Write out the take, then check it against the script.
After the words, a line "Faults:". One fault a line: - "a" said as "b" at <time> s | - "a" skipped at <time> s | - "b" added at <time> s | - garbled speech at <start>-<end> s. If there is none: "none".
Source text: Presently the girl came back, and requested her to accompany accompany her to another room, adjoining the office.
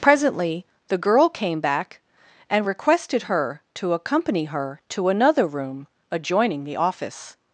Presently the girl came back, and requested her to accompany her to another room, adjoining the office.
Faults:
- "accompany" skipped at 4.5 s